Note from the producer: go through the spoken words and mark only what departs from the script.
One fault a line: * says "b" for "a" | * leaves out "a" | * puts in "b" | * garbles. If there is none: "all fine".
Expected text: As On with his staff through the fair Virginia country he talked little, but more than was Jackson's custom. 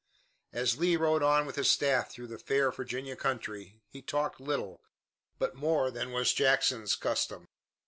* puts in "Lee rode"